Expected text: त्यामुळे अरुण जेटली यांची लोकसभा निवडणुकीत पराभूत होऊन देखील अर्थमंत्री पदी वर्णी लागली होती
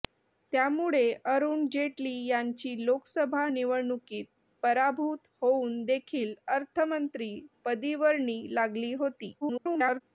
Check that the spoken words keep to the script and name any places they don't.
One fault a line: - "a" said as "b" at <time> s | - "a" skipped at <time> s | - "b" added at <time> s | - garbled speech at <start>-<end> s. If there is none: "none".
- garbled speech at 9.4-10.0 s